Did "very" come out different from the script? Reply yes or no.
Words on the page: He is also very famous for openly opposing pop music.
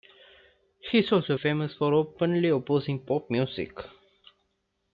yes